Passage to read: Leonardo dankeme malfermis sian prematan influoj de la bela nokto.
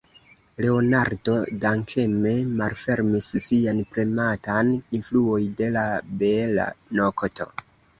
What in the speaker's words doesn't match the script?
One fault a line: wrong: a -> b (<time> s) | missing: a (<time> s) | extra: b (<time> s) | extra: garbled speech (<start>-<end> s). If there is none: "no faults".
no faults